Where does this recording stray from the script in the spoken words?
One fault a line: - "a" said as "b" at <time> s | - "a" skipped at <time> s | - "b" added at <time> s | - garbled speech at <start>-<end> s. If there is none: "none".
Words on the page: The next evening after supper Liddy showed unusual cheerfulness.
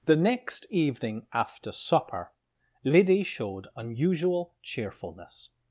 none